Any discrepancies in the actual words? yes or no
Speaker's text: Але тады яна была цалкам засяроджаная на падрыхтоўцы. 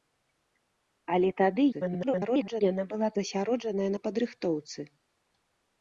yes